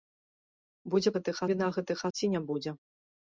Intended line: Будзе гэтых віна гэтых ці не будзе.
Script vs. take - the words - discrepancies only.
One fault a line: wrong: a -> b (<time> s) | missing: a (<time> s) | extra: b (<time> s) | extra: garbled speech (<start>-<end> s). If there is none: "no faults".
no faults